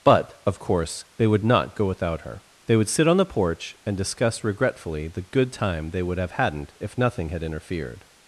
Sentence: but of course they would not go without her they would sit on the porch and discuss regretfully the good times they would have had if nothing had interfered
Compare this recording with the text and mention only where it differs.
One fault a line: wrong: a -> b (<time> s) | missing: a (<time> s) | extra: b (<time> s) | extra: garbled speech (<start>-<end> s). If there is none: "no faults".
wrong: times -> time (5.5 s)
wrong: had -> hadn't (6.3 s)